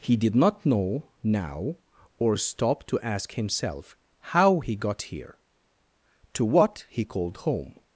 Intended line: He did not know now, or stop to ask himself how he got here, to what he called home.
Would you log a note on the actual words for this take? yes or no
no